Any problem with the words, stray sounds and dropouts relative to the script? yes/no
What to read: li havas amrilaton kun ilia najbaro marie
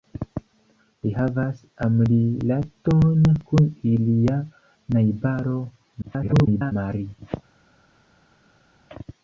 yes